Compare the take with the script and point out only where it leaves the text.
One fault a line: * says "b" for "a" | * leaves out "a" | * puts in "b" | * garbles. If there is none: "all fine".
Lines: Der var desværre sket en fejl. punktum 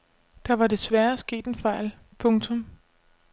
all fine